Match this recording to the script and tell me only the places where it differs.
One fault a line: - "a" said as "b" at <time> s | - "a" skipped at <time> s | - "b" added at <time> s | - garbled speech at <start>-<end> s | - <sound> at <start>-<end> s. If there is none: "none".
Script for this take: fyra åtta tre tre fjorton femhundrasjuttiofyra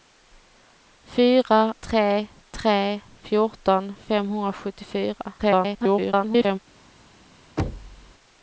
- "åtta" skipped at 1.7 s
- garbled speech at 5.4-6.6 s
- thud at 7.6-8.1 s